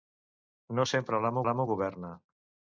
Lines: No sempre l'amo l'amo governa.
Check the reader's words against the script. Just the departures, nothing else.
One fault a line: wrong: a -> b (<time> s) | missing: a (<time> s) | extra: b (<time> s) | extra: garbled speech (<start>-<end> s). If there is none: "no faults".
no faults